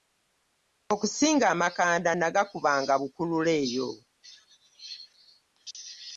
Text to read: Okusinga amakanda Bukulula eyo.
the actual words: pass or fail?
fail